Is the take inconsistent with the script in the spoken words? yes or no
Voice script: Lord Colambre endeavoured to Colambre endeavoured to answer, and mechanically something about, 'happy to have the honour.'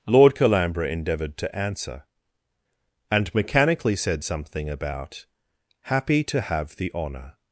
yes